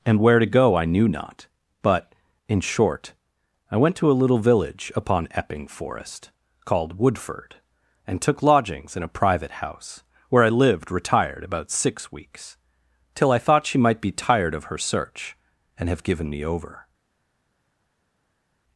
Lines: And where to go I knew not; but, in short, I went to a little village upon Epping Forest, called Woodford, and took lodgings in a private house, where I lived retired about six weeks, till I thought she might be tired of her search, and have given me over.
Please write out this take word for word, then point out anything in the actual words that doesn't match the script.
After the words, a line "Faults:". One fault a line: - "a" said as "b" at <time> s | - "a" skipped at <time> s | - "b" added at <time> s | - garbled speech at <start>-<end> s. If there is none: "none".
And where to go I knew not; but, in short, I went to a little village upon Epping Forest, called Woodford, and took lodgings in a private house, where I lived retired about six weeks, till I thought she might be tired of her search, and have given me over.
Faults:
none